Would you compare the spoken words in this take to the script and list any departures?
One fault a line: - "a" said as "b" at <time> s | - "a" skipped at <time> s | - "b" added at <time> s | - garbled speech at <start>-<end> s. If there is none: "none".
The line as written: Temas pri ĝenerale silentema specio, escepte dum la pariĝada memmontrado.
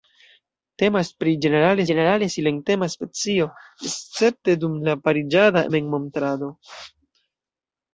- "ĝenerale" added at 1.9 s